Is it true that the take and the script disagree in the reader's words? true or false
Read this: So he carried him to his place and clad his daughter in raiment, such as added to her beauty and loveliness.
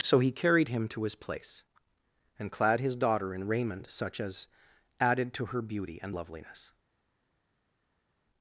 false